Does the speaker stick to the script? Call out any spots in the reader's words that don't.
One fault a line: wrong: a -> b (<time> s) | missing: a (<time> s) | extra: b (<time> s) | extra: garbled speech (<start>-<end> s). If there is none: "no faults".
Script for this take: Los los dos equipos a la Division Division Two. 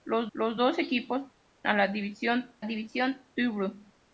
no faults